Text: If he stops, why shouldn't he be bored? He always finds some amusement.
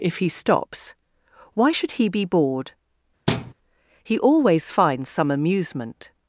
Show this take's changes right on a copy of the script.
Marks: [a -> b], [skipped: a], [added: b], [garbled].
If he stops, why [shouldn't -> should] he be bored? He always finds some amusement.